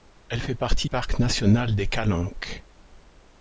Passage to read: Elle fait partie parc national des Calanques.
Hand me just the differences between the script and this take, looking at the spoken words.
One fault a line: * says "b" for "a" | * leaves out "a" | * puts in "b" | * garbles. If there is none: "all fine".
all fine